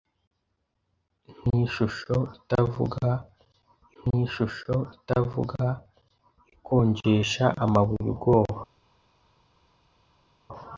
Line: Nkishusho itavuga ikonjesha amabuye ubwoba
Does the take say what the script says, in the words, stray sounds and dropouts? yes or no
no